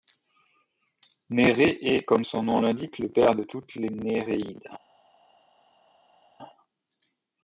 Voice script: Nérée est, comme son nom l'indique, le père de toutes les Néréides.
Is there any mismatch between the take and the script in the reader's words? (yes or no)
no